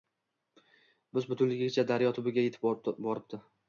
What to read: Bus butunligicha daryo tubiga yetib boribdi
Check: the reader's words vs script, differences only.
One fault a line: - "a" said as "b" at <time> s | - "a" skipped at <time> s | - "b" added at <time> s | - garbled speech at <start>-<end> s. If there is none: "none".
none